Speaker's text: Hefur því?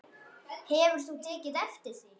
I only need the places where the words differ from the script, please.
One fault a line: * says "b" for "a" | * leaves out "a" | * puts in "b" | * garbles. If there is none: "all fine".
* puts in "þú tekið eftir"